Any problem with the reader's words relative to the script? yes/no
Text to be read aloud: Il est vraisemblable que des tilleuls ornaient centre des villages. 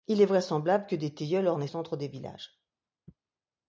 no